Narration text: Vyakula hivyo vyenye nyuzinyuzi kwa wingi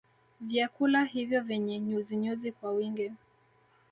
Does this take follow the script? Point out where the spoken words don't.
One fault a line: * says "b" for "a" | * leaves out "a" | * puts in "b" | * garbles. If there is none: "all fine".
all fine